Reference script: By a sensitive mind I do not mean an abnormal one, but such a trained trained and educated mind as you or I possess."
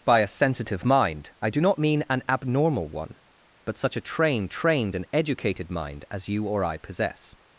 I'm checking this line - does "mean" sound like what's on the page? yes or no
yes